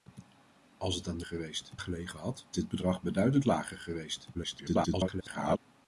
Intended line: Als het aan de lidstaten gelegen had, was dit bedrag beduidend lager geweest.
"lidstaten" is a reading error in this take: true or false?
true